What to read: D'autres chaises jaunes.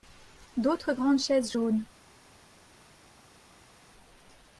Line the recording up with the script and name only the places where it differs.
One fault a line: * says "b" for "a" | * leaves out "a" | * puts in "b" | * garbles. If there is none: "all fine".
* puts in "grandes"